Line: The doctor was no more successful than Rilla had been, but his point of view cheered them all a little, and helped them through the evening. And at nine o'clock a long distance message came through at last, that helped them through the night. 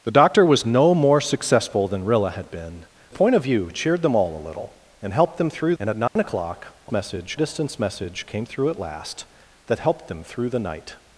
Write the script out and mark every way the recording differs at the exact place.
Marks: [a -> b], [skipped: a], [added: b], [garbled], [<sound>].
The doctor was no more successful than Rilla had been, [skipped: but his] point of view cheered them all a little, and helped them through [skipped: the evening.] And at nine [dropout] o'clock a [long -> message] distance message came through at last, that helped them through the night.